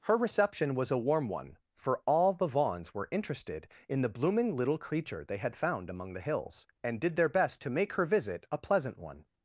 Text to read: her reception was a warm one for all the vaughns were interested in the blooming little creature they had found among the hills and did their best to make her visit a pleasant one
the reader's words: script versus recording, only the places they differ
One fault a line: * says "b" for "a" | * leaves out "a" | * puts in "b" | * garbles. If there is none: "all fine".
all fine